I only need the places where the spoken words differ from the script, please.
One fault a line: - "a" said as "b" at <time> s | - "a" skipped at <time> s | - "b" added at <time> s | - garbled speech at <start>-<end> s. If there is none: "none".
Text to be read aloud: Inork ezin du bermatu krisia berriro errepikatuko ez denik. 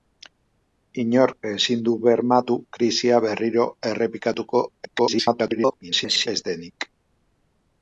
- garbled speech at 4.8-6.3 s